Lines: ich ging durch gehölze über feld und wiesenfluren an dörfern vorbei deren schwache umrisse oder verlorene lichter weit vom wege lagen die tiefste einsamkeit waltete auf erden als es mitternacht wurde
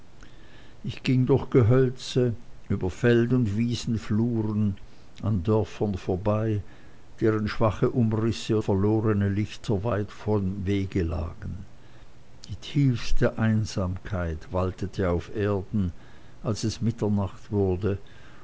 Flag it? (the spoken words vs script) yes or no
yes